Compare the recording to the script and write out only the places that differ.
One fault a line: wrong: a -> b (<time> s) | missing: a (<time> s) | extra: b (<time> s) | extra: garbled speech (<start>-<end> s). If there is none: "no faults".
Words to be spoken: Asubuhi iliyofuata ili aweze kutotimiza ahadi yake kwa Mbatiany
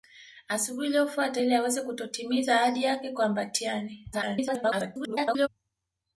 extra: garbled speech (4.1-5.5 s)